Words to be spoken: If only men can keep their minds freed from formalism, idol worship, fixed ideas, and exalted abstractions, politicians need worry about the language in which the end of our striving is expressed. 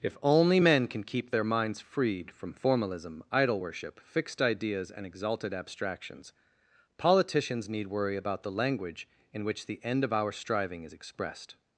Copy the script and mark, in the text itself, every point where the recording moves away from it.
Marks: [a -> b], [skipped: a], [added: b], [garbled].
If only men can keep their minds freed from formalism, idol worship, fixed ideas, and exalted abstractions, politicians need worry about the language in which the end of our striving is expressed.